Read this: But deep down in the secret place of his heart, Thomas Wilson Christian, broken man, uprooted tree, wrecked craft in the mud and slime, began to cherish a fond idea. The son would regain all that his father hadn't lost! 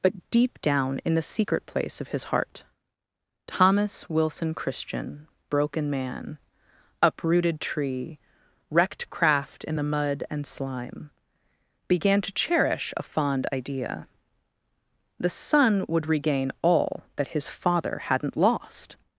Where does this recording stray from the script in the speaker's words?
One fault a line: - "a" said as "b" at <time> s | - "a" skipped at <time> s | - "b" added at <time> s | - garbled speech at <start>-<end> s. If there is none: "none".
none